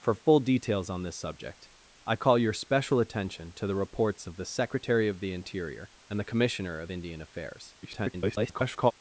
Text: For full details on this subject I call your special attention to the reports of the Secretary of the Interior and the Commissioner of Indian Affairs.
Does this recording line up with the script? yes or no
no